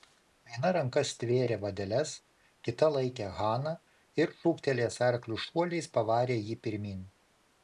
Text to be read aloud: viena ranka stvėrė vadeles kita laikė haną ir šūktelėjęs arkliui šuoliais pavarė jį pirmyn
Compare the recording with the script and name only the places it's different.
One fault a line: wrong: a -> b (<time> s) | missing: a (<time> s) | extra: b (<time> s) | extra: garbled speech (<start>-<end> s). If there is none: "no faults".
no faults